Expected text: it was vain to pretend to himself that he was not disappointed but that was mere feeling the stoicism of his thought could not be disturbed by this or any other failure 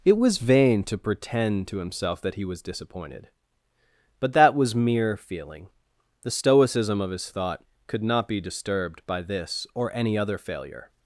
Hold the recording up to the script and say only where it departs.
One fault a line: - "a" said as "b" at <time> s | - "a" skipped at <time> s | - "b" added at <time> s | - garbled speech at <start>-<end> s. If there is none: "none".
- "not" skipped at 2.6 s